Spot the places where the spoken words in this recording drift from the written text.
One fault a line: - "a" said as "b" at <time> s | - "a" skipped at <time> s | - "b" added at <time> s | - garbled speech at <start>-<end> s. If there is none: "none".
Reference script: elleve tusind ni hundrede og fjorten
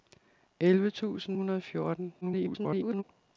- "ni" skipped at 1.4 s
- garbled speech at 2.2-3.0 s